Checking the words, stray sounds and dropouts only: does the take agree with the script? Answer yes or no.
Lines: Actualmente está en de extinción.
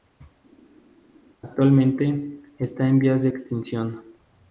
no